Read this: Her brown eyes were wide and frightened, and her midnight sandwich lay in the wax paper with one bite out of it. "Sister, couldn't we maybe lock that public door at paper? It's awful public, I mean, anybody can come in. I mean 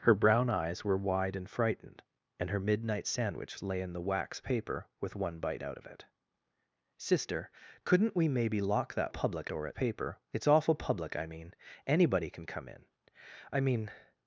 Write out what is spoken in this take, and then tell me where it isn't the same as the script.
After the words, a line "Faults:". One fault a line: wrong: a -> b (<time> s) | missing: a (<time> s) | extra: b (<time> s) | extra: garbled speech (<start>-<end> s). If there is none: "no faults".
Her brown eyes were wide and frightened, and her midnight sandwich lay in the wax paper with one bite out of it. "Sister, couldn't we maybe lock that public door at paper? It's awful public, I mean, anybody can come in. I mean
Faults:
no faults